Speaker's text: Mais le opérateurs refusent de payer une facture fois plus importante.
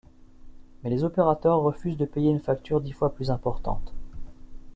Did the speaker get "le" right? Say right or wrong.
wrong